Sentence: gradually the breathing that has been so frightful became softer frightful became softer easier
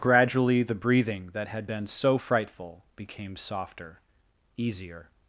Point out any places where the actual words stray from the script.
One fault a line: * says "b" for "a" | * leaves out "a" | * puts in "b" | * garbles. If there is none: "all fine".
* says "had" for "has"
* leaves out "frightful became softer"